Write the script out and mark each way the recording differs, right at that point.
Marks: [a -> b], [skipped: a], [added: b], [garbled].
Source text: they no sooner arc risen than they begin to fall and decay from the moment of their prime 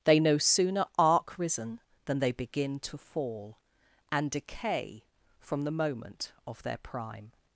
they no sooner arc risen than they begin to fall and decay from the moment of their prime